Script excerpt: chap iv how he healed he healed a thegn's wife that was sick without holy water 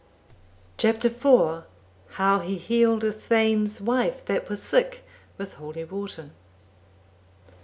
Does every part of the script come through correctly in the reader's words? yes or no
no